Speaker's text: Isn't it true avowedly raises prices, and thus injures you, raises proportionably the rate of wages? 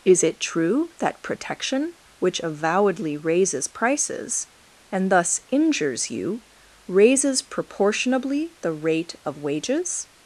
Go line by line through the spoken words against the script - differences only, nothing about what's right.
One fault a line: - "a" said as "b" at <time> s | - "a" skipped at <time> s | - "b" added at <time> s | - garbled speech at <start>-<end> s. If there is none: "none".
- "Isn't" said as "Is" at 0.0 s
- "that protection which" added at 1.0 s